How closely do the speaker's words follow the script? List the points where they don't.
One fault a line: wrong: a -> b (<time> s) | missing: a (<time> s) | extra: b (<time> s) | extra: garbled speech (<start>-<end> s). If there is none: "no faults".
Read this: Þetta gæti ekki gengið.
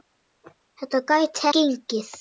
missing: ekki (1.5 s)